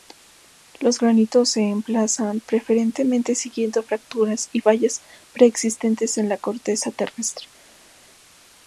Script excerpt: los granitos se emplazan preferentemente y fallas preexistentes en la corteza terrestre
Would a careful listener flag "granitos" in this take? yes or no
no